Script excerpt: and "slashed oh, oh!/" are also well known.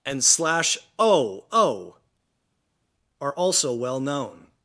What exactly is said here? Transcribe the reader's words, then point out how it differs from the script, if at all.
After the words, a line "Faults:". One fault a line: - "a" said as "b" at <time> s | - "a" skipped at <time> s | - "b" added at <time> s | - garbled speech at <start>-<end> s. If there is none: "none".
and "slash oh, oh!/" are also well known.
Faults:
- "slashed" said as "slash" at 0.2 s